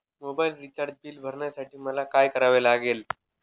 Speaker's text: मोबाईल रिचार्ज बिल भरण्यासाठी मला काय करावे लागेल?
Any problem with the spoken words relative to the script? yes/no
no